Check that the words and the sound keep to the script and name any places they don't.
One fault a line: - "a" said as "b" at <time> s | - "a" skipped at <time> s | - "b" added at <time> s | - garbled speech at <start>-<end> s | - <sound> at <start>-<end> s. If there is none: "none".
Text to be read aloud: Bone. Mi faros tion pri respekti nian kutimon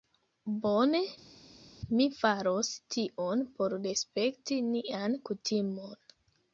- "pri" said as "por" at 3.6 s